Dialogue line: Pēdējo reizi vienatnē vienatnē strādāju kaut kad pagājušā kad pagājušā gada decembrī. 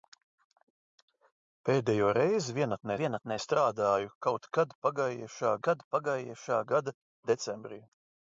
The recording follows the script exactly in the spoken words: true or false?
true